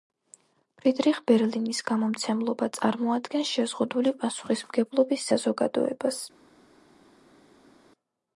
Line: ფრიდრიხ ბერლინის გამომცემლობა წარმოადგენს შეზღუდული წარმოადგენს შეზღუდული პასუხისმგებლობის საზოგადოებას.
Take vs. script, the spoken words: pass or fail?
fail